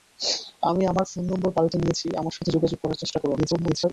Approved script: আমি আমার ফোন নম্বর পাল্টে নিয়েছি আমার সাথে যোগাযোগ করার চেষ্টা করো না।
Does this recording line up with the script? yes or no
no